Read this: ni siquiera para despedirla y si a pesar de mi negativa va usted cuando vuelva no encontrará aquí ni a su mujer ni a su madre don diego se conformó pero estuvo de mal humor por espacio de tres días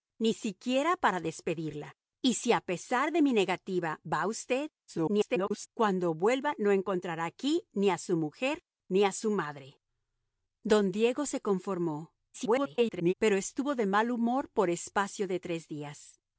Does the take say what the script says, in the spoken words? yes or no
no